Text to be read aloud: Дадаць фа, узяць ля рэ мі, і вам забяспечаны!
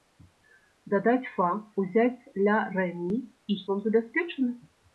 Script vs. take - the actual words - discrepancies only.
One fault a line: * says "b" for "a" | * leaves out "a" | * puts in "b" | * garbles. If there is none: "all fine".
all fine